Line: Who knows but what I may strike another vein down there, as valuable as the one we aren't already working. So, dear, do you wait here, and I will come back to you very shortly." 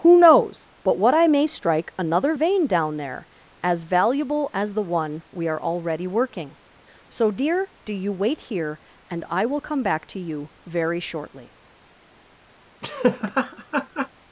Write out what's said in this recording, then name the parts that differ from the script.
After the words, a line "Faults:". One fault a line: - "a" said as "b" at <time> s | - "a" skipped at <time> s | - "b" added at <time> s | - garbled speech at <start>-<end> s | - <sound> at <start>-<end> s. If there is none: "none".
Who knows but what I may strike another vein down there, as valuable as the one we are already working. So, dear, do you wait here, and I will come back to you very shortly."
Faults:
- "aren't" said as "are" at 5.5 s
- laugh at 12.8-14.1 s